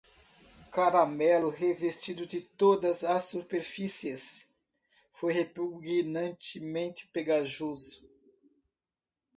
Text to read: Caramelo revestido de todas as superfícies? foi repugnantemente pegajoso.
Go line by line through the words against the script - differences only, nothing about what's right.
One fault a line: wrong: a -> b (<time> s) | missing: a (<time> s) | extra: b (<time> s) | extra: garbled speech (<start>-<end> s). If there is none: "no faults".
no faults